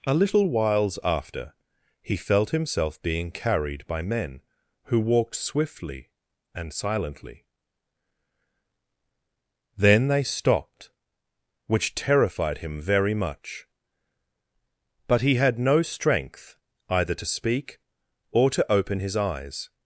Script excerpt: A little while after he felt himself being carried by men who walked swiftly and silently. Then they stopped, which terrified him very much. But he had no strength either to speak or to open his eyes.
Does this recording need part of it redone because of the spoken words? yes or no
yes